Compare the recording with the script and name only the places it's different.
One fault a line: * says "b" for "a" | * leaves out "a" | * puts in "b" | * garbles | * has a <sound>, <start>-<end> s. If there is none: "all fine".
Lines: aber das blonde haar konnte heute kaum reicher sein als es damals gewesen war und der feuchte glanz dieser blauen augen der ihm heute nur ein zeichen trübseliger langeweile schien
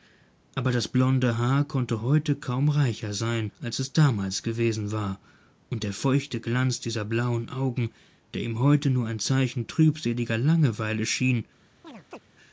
* has a chirp, 11.8-12.2 s